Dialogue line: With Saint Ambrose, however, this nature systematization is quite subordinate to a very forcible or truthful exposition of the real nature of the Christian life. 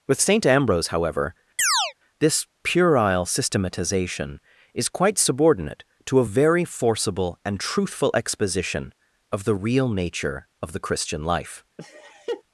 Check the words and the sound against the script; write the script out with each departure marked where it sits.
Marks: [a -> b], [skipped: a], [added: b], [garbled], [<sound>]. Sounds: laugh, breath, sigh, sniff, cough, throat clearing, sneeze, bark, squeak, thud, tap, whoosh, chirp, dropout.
With Saint Ambrose, however, [chirp] this [nature -> puerile] systematization is quite subordinate to a very forcible [or -> and] truthful exposition of the real nature of the Christian life. [laugh]